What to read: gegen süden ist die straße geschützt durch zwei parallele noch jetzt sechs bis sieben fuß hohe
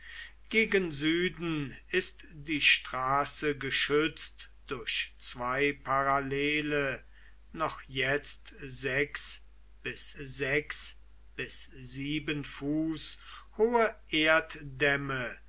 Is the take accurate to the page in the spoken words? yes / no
no